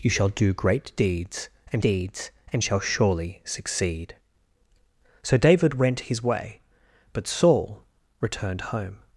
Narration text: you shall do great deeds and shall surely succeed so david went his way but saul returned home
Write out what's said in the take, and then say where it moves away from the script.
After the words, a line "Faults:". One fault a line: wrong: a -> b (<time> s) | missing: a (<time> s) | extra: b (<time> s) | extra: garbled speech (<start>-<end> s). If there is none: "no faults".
you shall do great deeds and deeds and shall surely succeed so david went his way but saul returned home
Faults:
extra: deeds and (1.8 s)